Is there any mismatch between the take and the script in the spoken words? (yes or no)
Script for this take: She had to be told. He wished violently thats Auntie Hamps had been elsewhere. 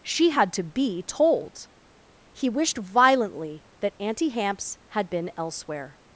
yes